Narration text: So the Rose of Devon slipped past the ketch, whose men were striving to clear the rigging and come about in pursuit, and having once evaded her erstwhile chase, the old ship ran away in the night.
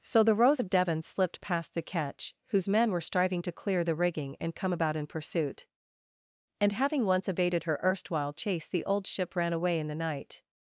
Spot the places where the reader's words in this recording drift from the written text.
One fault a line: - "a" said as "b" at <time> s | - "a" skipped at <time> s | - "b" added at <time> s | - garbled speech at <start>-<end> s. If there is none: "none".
none